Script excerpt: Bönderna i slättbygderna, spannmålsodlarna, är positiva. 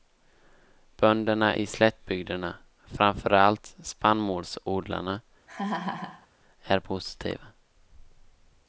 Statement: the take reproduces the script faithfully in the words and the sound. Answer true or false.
false